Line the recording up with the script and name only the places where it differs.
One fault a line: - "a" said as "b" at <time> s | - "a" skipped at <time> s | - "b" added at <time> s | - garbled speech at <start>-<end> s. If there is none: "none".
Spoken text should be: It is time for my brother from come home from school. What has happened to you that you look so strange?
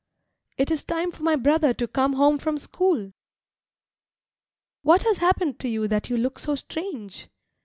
- "from" said as "to" at 1.8 s